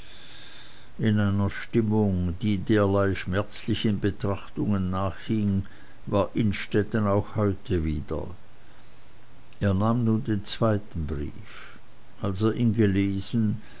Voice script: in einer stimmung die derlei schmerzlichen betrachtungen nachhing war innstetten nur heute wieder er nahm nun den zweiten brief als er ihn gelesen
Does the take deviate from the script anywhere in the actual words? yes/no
yes